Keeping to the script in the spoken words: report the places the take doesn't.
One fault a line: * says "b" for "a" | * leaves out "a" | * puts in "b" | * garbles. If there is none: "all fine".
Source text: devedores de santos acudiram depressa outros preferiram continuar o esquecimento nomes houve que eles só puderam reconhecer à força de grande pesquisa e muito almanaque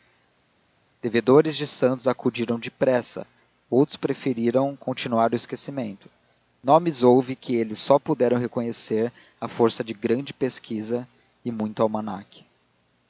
all fine